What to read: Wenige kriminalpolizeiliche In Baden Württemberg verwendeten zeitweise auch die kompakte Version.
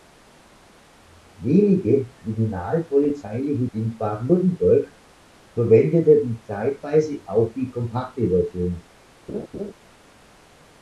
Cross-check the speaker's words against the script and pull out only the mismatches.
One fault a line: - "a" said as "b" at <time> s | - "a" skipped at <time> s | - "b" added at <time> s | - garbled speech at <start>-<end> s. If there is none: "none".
none